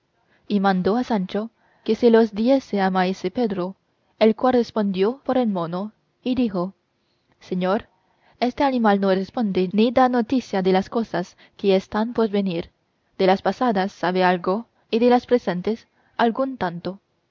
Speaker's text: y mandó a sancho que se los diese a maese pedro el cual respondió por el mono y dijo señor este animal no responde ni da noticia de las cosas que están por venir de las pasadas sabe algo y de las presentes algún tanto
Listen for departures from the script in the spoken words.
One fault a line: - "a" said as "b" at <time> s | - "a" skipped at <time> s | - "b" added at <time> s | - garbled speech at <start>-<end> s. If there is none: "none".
none